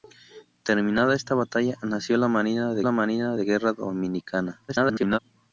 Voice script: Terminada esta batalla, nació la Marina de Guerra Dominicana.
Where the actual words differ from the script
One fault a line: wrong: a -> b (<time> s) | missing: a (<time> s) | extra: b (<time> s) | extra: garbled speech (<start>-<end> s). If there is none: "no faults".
extra: la Marina de (2.8 s)
extra: garbled speech (4.7-5.2 s)